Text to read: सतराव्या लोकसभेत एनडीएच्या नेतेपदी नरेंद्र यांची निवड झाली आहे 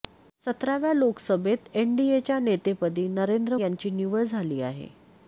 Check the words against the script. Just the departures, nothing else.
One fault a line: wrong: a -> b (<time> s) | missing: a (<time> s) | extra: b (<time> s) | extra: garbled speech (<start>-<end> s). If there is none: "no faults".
no faults